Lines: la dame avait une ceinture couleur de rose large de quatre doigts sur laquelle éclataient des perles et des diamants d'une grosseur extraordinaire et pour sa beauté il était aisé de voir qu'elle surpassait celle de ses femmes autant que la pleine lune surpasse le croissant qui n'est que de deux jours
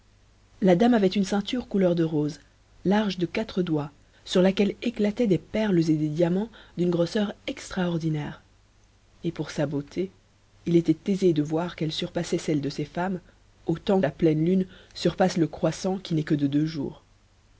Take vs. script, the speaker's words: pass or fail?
fail